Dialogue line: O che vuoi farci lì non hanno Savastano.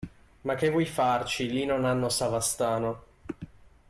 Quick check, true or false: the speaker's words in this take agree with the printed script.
false